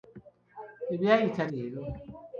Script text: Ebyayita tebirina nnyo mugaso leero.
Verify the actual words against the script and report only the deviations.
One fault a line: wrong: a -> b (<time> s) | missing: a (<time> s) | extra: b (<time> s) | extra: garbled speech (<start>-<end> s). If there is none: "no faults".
missing: tebirina nnyo mugaso (1.4 s)